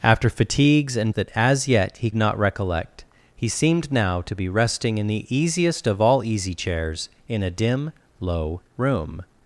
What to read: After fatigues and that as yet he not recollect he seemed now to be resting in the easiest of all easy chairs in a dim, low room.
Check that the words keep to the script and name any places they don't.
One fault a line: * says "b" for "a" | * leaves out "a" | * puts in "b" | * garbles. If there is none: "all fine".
all fine